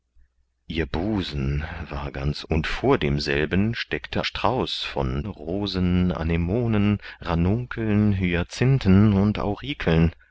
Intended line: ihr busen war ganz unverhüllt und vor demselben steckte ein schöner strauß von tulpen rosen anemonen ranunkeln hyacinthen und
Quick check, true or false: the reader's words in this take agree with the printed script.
false